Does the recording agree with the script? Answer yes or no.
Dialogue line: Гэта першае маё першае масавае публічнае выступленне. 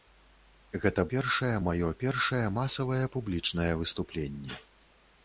yes